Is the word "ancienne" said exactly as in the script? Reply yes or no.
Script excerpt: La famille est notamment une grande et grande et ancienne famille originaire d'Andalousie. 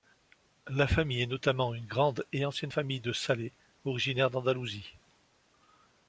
no